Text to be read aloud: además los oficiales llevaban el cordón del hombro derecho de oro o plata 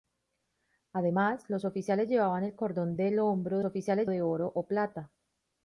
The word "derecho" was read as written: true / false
false